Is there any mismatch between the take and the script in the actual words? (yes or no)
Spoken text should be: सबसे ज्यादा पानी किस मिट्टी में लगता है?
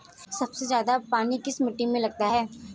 no